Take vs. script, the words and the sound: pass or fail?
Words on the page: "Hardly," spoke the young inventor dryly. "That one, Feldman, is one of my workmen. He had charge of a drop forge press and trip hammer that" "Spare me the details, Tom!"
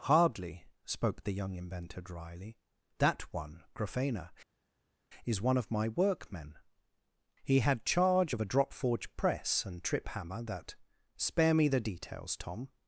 fail